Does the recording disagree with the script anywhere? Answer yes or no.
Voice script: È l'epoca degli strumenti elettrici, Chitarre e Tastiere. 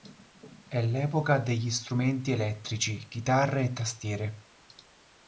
no